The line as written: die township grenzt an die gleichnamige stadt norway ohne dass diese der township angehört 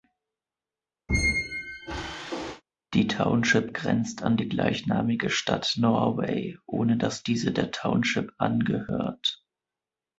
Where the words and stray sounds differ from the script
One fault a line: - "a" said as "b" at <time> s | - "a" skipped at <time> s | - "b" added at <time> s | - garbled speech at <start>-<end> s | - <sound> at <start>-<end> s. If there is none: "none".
- squeak at 1.1-2.6 s